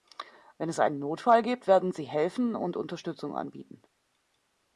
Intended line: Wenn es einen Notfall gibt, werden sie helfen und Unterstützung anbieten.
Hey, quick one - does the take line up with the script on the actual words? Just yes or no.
yes